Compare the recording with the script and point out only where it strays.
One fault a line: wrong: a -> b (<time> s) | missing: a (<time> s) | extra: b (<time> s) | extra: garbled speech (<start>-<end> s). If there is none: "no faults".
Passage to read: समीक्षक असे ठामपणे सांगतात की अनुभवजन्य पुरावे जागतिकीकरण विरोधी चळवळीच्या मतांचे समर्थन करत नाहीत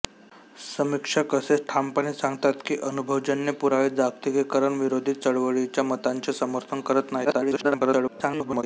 extra: garbled speech (7.2-8.6 s)